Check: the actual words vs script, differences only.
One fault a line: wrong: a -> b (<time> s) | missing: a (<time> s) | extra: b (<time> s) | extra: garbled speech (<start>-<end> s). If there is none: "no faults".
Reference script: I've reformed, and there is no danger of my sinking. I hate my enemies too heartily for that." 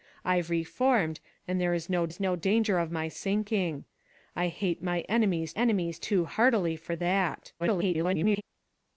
extra: is no (2.1 s)
extra: enemies (5.5 s)
extra: garbled speech (7.6-8.4 s)